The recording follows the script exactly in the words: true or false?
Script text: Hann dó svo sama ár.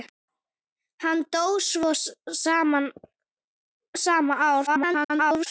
false